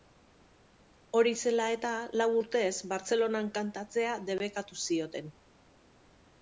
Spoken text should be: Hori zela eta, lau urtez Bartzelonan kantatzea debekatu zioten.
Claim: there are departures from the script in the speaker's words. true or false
false